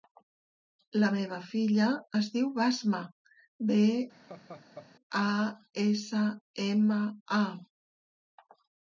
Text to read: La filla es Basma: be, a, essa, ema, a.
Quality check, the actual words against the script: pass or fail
fail